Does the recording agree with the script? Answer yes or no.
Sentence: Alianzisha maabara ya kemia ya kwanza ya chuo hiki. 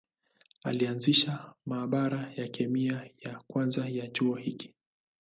yes